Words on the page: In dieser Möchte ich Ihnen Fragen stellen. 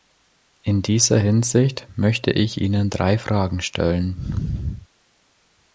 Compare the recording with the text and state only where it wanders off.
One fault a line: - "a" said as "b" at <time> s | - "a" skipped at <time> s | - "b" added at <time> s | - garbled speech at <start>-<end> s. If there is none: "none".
- "Hinsicht" added at 1.2 s
- "drei" added at 2.9 s